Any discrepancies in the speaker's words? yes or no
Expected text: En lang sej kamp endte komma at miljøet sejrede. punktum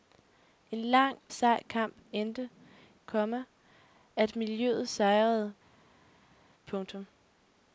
no